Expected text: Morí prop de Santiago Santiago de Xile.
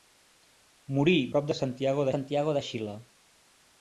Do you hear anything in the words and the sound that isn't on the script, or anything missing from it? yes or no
no